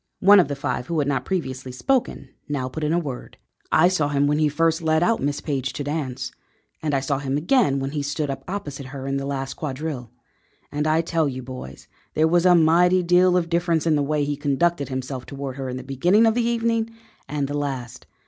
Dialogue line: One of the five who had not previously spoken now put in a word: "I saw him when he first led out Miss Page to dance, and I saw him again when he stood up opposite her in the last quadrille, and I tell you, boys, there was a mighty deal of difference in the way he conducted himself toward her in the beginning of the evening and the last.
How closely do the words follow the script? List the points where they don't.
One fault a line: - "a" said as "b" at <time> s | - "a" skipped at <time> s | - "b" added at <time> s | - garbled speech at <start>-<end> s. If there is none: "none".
none